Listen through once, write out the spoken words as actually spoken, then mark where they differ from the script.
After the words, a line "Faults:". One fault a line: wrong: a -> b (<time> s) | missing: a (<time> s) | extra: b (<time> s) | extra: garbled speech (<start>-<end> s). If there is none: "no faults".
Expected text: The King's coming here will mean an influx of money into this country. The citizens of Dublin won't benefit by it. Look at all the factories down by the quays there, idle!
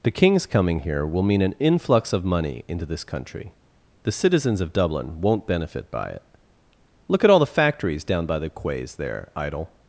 The King's coming here will mean an influx of money into this country. The citizens of Dublin won't benefit by it. Look at all the factories down by the quays there, idle!
Faults:
no faults